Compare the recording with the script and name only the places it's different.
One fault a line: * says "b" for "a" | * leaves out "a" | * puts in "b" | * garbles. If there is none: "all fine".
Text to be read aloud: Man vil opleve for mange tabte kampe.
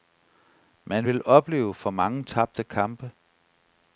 all fine